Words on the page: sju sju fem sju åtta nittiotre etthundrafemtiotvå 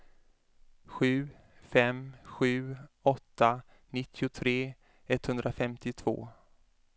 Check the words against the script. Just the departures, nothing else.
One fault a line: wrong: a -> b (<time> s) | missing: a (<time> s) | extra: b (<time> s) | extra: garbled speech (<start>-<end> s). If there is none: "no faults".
missing: sju (1.3 s)